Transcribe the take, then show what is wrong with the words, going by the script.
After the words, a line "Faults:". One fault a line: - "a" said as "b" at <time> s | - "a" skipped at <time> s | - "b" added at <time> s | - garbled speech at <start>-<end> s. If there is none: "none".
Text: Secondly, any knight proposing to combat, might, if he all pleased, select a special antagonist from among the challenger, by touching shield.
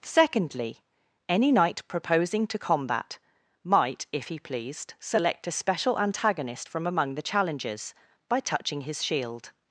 Secondly, any knight proposing to combat, might, if he pleased, select a special antagonist from among the challengers, by touching his shield.
Faults:
- "all" skipped at 4.4 s
- "challenger" said as "challengers" at 7.2 s
- "his" added at 8.8 s